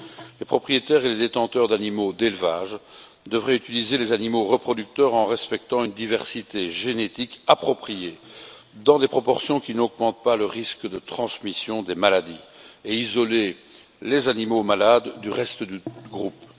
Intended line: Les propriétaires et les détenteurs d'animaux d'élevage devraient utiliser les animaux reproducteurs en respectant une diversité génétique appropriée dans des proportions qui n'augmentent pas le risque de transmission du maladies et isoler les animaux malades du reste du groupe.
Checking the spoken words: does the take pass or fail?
fail